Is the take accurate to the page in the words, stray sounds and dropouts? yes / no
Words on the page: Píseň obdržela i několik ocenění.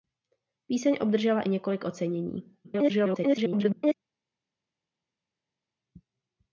no